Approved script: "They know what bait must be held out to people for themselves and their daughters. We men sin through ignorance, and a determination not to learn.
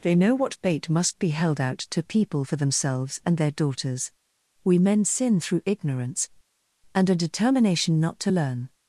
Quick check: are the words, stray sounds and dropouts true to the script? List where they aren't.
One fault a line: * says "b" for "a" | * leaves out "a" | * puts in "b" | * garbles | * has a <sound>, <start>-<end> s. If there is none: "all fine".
all fine